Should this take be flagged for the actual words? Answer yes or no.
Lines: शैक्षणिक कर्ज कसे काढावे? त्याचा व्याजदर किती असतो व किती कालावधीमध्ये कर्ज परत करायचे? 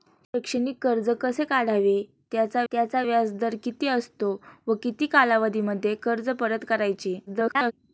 yes